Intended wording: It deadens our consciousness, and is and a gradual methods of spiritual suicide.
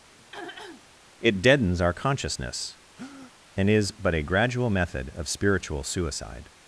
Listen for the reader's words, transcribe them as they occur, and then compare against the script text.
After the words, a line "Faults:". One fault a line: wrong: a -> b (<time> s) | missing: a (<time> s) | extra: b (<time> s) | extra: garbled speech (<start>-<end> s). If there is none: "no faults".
It deadens our consciousness, and is but a gradual method of spiritual suicide.
Faults:
wrong: and -> but (3.9 s)
wrong: methods -> method (4.7 s)